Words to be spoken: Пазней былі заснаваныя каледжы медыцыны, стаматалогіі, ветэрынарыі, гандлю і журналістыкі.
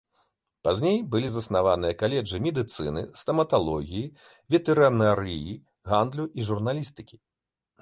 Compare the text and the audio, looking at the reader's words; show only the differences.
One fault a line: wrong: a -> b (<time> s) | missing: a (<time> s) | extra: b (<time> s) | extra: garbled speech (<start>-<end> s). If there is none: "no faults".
no faults